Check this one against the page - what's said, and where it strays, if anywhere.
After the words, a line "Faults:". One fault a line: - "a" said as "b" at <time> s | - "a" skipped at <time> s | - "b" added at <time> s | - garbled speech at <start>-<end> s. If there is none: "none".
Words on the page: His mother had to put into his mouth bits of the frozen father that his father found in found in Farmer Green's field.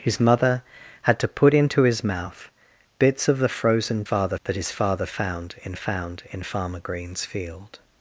His mother had to put into his mouth bits of the frozen father that his father found in found in Farmer Green's field.
Faults:
none